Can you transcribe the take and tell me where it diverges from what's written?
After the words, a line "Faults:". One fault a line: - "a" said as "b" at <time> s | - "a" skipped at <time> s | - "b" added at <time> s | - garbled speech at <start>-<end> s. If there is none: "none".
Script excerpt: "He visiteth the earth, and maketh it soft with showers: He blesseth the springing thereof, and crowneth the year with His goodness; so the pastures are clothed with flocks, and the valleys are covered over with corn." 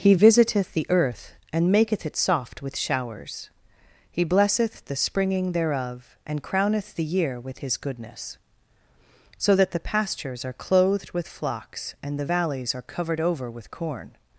"He visiteth the earth, and maketh it soft with showers: He blesseth the springing thereof, and crowneth the year with His goodness; so that the pastures are clothed with flocks, and the valleys are covered over with corn."
Faults:
- "that" added at 9.6 s